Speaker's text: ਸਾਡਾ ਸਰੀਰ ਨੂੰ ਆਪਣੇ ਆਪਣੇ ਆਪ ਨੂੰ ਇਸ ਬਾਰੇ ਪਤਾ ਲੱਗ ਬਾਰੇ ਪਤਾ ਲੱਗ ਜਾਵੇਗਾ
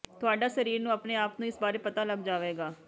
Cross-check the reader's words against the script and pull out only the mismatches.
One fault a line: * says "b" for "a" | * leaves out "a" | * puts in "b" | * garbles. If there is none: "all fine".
* says "ਤੁਹਾਡਾ" for "ਸਾਡਾ"
* leaves out "ਆਪਣੇ"
* leaves out "ਬਾਰੇ ਪਤਾ ਲੱਗ"